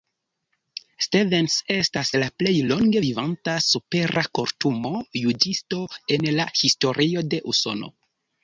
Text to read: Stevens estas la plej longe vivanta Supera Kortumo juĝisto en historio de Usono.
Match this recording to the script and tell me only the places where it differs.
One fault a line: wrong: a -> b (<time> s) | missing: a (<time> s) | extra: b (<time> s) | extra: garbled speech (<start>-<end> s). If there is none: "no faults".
extra: la (6.4 s)